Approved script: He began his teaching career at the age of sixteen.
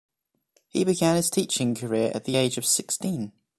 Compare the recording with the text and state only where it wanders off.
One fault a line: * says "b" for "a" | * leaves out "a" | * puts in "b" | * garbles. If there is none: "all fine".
all fine